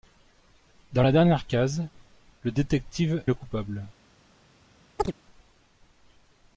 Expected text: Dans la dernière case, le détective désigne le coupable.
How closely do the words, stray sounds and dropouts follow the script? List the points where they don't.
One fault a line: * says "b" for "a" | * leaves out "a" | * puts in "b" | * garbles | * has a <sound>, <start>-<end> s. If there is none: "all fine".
* leaves out "désigne"
* has a chirp, 5.0-5.1 s